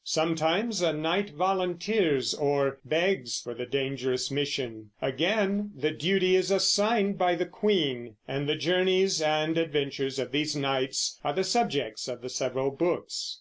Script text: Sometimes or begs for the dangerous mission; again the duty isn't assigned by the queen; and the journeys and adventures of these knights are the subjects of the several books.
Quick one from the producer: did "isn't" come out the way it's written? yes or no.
no